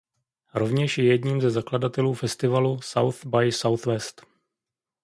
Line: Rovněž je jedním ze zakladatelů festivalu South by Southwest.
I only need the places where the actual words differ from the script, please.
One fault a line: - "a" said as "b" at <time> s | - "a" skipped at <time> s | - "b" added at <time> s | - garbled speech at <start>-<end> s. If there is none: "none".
none